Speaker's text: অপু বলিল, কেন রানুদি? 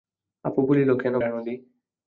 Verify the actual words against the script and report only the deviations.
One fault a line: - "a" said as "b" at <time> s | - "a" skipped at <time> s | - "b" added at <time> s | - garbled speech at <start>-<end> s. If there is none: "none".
none